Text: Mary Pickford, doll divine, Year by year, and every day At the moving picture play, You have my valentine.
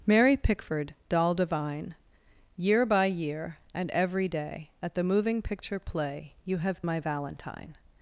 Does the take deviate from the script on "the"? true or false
false